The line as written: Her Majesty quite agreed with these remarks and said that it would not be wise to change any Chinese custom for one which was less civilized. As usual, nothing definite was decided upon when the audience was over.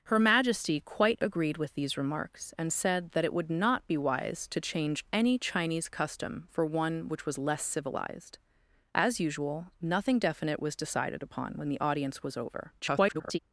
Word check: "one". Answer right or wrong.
right